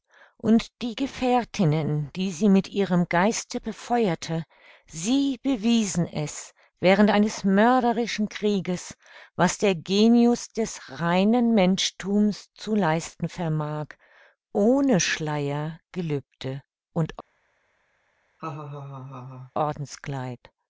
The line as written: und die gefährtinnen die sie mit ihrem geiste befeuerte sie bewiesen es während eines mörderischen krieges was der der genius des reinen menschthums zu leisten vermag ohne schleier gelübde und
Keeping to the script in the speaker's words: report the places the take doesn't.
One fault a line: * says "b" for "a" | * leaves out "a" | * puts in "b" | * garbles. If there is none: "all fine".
* leaves out "der"